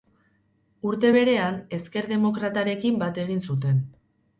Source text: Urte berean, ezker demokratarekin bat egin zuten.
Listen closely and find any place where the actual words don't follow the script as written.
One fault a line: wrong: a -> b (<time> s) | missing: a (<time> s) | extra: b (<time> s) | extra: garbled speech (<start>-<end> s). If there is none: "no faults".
no faults